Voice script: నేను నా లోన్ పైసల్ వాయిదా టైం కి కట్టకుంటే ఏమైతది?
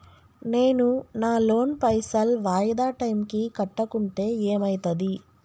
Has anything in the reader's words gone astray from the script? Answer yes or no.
no